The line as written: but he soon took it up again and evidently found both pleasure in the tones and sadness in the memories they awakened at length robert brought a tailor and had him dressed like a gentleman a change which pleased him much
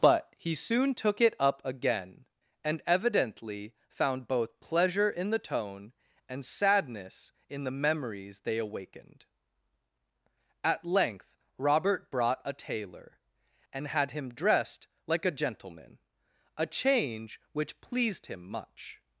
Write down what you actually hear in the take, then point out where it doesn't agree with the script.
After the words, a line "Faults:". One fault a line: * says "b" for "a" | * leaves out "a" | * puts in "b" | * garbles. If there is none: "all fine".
but he soon took it up again and evidently found both pleasure in the tone and sadness in the memories they awakened at length robert brought a tailor and had him dressed like a gentleman a change which pleased him much
Faults:
* says "tone" for "tones"